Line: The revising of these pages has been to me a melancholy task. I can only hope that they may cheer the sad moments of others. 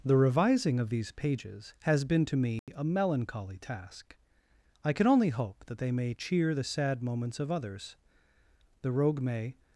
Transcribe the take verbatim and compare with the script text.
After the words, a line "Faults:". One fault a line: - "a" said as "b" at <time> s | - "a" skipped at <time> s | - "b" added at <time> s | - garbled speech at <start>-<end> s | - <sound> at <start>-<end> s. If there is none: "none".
The revising of these pages has been to me a melancholy task. I can only hope that they may cheer the sad moments of others. The Rogue may
Faults:
- dropout at 2.6-2.7 s
- "The Rogue may" added at 8.8 s